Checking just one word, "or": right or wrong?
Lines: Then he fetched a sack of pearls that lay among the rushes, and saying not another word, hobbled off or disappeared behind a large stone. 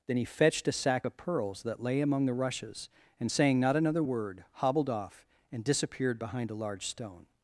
wrong